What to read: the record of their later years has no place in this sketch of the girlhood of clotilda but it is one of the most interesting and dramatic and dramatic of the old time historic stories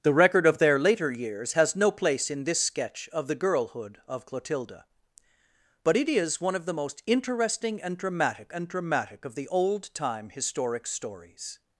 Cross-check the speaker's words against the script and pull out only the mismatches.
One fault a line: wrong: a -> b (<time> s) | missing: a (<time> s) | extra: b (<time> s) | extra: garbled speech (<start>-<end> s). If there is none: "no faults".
no faults